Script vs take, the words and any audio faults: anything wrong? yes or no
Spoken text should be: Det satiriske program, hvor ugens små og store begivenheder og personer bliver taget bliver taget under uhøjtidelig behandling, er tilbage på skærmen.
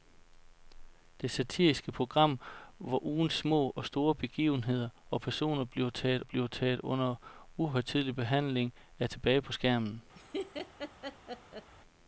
yes